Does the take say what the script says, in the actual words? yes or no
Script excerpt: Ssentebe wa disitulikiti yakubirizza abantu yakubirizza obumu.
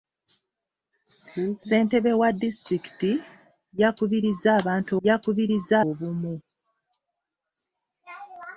yes